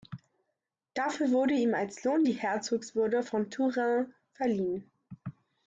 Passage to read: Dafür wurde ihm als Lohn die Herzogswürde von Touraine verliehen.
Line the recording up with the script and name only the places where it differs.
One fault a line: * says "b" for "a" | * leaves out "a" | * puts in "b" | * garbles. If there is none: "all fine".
all fine